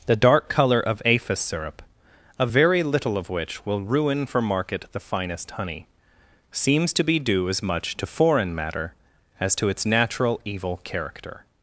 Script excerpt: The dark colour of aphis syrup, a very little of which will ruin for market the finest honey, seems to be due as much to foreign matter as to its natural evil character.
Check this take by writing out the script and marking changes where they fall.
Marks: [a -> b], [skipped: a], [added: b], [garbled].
The dark colour of aphis syrup, a very little of which will ruin for market the finest honey, seems to be due as much to foreign matter as to its natural evil character.